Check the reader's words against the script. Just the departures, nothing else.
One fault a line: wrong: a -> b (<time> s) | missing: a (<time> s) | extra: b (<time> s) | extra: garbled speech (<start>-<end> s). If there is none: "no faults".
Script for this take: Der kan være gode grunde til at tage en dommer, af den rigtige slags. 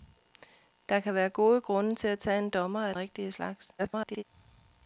missing: den (2.9 s)
extra: garbled speech (3.8-4.2 s)